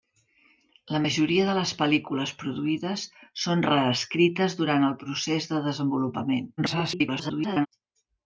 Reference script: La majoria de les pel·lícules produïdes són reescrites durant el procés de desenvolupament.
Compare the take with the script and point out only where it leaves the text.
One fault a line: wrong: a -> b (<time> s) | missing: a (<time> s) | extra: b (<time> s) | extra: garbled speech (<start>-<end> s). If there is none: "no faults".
extra: garbled speech (6.6-7.7 s)